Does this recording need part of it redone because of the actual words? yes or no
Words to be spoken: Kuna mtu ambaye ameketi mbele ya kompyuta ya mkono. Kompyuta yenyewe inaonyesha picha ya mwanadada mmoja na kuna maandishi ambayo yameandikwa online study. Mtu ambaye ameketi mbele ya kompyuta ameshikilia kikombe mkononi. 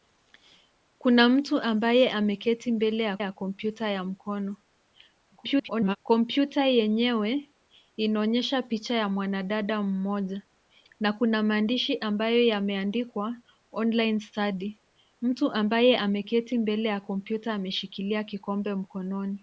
yes